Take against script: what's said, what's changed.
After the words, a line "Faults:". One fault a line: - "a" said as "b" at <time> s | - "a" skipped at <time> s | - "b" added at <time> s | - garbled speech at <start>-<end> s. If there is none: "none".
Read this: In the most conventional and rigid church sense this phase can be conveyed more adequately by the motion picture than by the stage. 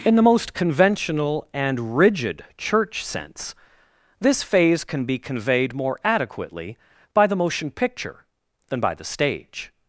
In the most conventional and rigid church sense this phase can be conveyed more adequately by the motion picture than by the stage.
Faults:
none